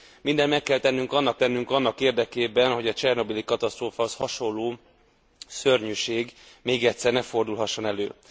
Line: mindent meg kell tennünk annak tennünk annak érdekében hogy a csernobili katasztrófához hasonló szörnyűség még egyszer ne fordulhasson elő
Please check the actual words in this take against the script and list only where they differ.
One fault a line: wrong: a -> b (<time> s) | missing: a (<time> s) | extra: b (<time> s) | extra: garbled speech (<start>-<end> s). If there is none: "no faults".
no faults